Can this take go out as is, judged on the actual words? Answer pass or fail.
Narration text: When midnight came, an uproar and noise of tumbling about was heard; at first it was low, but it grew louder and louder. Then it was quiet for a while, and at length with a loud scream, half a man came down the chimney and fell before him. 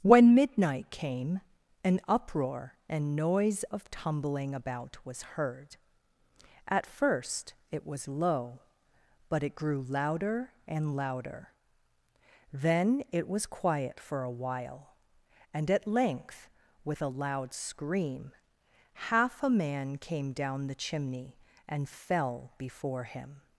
pass